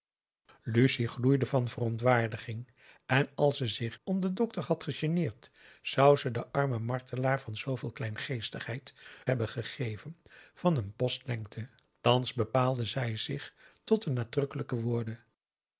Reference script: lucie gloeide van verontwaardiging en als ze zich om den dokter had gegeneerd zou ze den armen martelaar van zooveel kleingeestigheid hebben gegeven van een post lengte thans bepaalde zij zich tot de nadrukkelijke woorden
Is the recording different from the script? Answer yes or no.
no